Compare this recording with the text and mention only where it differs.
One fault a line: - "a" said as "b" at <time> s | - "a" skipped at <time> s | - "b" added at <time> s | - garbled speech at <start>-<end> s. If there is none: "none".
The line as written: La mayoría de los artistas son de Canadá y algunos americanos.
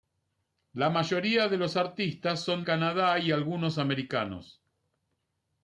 - "de" skipped at 2.6 s